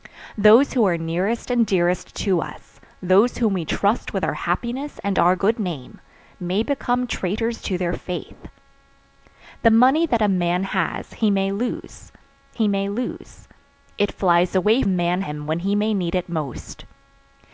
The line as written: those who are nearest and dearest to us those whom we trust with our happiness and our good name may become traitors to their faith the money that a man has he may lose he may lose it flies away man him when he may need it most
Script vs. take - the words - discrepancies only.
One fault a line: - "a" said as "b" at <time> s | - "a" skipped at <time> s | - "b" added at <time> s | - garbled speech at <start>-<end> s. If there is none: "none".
none